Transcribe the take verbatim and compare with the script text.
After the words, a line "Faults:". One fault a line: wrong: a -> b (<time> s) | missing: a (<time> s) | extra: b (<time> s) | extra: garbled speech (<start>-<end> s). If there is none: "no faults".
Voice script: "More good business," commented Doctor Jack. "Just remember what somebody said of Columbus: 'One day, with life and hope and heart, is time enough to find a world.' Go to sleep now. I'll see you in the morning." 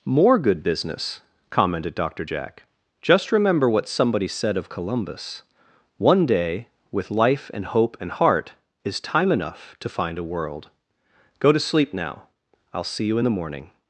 "More good business," commented Doctor Jack. "Just remember what somebody said of Columbus: 'One day, with life and hope and heart, is time enough to find a world.' Go to sleep now. I'll see you in the morning."
Faults:
no faults